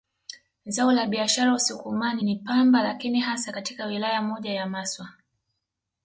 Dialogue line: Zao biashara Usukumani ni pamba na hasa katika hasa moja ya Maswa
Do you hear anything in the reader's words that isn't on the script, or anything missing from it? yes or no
yes